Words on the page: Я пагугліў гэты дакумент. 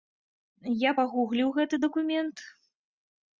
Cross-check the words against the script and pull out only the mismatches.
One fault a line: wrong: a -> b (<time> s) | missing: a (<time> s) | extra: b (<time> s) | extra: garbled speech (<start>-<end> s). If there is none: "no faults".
no faults